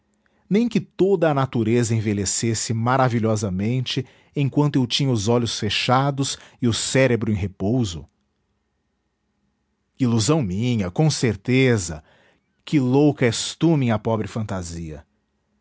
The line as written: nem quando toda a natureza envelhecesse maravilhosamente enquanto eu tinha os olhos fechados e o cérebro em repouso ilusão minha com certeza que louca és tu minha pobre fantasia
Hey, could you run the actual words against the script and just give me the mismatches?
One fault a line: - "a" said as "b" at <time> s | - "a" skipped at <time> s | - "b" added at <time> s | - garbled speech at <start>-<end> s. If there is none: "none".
- "quando" said as "que" at 0.7 s